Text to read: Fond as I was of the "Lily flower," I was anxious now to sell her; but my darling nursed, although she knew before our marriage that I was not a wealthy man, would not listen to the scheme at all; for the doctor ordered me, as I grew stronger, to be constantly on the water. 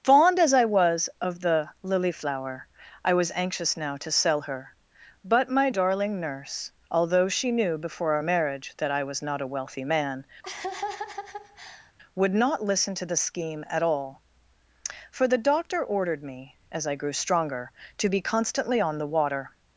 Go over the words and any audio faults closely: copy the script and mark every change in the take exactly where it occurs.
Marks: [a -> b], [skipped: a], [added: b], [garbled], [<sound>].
Fond as I was of the "Lily flower," I was anxious now to sell her; but my darling [nursed, -> nurse] although she knew before our marriage that I was not a wealthy man, [laugh] would not listen to the scheme at all; for the doctor ordered me, as I grew stronger, to be constantly on the water.